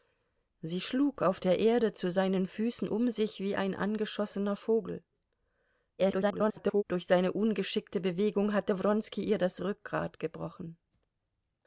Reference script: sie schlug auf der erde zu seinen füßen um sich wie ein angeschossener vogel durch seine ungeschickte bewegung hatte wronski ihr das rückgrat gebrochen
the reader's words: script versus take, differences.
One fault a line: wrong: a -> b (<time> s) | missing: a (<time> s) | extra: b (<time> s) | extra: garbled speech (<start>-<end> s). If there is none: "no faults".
extra: garbled speech (6.0-6.8 s)